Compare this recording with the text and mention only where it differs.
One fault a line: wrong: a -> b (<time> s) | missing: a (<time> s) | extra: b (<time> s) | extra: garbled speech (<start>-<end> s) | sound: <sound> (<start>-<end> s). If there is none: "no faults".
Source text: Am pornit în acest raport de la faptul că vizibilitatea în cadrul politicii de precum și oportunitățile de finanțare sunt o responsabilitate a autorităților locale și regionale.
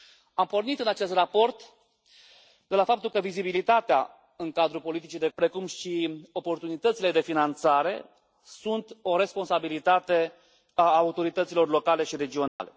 sound: dropout (12.5-12.6 s)